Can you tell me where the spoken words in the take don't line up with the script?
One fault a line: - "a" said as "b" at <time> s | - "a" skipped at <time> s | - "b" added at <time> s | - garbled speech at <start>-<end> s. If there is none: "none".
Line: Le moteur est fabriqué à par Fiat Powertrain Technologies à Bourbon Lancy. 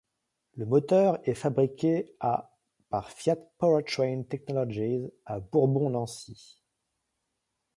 none